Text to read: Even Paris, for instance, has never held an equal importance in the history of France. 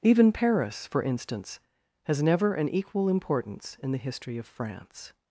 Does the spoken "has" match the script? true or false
true